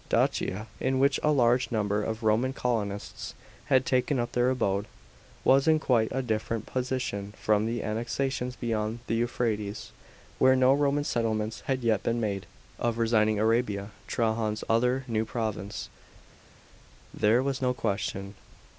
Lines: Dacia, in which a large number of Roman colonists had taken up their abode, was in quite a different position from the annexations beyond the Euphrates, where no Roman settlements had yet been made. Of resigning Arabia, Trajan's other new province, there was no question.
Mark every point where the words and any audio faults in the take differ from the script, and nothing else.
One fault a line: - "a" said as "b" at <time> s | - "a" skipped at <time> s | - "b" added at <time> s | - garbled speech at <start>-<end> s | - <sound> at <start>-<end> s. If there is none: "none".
none